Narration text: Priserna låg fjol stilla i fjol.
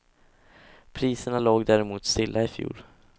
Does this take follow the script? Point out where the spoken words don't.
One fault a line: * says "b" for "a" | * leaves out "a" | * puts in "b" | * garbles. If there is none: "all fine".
* says "däremot" for "fjol"